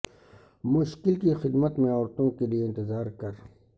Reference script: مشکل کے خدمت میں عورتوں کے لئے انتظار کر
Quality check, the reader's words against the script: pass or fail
fail